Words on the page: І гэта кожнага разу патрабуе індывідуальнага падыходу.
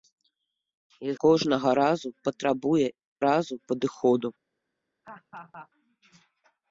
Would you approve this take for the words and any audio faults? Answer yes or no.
no